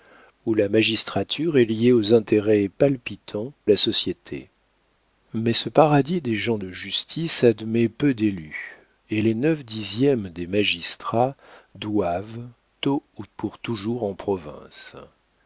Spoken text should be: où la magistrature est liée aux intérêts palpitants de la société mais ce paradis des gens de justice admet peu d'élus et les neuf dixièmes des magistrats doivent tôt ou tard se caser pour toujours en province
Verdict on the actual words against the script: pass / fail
fail